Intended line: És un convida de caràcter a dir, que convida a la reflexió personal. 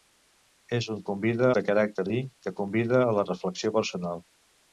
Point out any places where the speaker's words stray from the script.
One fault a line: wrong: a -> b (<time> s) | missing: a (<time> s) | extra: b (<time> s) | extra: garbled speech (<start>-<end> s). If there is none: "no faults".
no faults